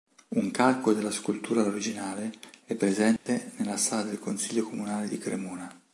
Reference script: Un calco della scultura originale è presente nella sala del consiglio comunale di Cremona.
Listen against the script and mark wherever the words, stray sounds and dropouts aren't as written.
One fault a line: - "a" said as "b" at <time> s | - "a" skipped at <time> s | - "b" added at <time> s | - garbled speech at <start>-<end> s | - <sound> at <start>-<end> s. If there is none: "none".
- dropout at 3.2-3.3 s